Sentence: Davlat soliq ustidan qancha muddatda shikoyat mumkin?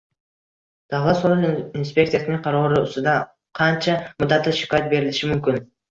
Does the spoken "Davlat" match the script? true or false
true